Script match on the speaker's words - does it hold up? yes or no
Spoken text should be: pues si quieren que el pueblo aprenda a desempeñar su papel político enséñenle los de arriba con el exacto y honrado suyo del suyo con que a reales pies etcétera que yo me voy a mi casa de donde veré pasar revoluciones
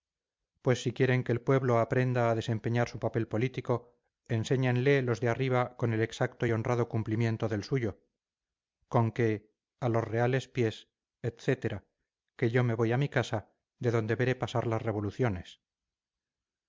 no